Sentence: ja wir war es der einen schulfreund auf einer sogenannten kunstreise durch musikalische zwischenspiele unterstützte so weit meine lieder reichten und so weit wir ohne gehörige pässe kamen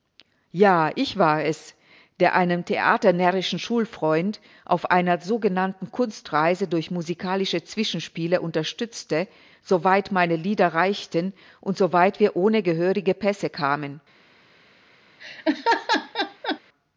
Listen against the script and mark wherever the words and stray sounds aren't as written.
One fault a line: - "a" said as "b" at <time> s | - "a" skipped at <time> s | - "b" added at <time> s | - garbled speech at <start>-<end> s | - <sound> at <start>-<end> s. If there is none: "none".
- "wir" said as "ich" at 0.9 s
- "theaternärrischen" added at 2.6 s
- laugh at 15.2-16.6 s